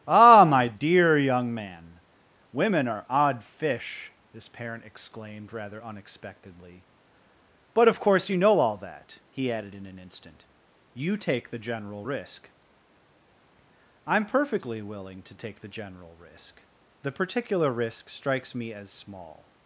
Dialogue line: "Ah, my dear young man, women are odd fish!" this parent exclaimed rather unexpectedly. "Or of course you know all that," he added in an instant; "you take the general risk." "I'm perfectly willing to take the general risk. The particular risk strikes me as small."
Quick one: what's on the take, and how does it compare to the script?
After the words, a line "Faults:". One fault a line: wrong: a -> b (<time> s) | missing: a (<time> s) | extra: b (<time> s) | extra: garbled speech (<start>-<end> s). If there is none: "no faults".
"Ah, my dear young man, women are odd fish!" this parent exclaimed rather unexpectedly. "But of course you know all that," he added in an instant; "you take the general risk." "I'm perfectly willing to take the general risk. The particular risk strikes me as small."
Faults:
wrong: Or -> But (7.7 s)